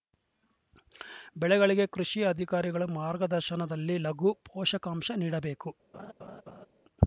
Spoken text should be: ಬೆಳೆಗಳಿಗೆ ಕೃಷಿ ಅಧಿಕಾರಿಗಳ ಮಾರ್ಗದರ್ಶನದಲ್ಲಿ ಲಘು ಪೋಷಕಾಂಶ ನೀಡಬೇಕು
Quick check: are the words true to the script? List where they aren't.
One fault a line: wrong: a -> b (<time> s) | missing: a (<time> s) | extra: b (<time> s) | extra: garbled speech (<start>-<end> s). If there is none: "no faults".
no faults